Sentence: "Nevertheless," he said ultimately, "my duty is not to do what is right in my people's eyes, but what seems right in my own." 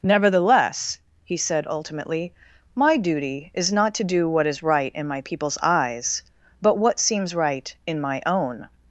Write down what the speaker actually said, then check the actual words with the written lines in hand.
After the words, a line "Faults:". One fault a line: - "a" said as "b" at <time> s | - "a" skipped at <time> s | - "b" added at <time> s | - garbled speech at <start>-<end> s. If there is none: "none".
"Nevertheless," he said ultimately, "my duty is not to do what is right in my people's eyes, but what seems right in my own."
Faults:
none